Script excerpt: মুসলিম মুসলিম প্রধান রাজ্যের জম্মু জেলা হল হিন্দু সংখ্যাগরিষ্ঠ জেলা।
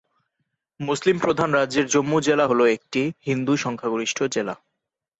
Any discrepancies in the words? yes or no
yes